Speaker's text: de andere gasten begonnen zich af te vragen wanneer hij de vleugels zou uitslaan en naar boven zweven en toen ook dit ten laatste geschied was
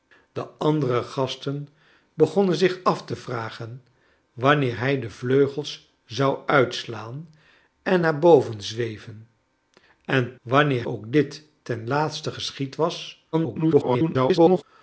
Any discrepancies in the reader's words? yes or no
yes